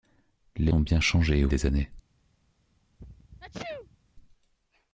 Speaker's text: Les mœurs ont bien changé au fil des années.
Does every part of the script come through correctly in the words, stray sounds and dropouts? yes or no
no